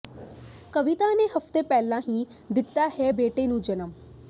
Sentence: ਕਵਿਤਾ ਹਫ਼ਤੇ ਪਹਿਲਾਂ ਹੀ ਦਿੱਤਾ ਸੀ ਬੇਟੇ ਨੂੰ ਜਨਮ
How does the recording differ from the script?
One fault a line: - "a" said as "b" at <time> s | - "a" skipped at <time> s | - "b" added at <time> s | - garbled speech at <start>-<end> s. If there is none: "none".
- "ਨੇ" added at 1.1 s
- "ਸੀ" said as "ਹੈ" at 2.9 s